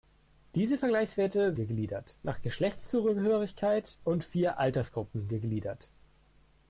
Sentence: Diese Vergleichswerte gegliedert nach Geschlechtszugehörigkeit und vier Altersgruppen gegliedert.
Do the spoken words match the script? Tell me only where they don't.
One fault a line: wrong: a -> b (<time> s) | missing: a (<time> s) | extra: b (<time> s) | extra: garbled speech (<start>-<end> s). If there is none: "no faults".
no faults